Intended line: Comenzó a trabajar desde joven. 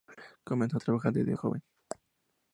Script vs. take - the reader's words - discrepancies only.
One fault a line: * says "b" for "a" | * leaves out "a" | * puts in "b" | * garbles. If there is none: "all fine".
all fine